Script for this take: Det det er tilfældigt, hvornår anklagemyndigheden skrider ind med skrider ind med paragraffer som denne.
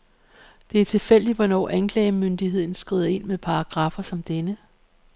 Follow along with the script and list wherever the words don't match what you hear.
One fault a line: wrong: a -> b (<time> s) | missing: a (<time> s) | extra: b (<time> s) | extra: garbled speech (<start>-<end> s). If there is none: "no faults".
missing: det (0.8 s)
missing: skrider ind med (3.4 s)